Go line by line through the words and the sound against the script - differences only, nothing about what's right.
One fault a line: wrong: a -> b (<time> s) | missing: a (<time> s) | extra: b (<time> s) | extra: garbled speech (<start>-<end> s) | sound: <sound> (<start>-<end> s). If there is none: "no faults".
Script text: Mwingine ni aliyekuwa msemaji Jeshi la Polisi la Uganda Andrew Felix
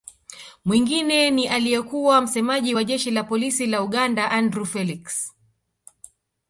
extra: wa (2.7 s)